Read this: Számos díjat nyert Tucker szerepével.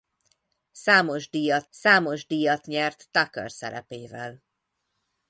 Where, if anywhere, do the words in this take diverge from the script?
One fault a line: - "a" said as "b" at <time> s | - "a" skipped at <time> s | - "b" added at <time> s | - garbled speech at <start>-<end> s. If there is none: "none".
- "számos díjat" added at 1.7 s